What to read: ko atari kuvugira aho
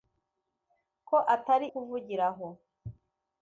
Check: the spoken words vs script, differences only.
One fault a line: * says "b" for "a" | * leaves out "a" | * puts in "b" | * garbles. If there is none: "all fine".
all fine